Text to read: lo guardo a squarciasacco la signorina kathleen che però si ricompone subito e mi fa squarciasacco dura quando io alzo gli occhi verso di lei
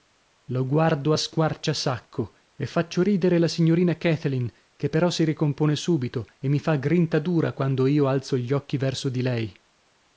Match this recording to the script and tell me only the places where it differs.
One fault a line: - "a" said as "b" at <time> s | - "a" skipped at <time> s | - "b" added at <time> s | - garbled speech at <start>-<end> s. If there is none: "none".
- "e faccio ridere" added at 2.5 s
- "squarciasacco" said as "grinta" at 6.7 s